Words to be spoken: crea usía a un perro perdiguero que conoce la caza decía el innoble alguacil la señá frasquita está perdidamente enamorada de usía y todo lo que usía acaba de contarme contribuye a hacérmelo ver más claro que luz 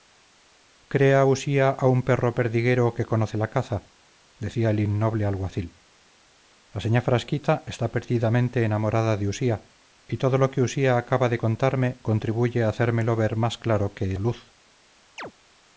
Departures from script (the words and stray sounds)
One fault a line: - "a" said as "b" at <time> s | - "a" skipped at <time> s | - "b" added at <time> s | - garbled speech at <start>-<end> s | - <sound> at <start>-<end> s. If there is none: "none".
- chirp at 15.2-15.3 s